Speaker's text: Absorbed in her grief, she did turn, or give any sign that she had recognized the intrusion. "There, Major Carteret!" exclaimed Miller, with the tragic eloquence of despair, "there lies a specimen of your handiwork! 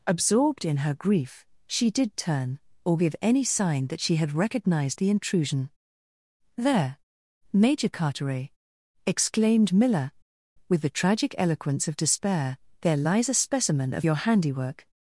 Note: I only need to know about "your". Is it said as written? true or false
true